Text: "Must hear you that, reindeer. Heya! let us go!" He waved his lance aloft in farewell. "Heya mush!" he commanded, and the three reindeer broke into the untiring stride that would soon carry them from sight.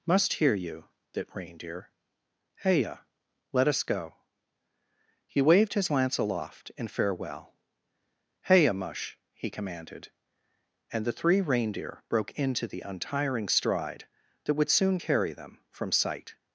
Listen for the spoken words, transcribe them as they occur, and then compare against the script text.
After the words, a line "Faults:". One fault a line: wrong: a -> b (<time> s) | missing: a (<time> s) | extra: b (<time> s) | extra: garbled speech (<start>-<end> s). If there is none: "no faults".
"Must hear you that, reindeer. Heya! let us go!" He waved his lance aloft in farewell. "Heya mush!" he commanded, and the three reindeer broke into the untiring stride that would soon carry them from sight.
Faults:
no faults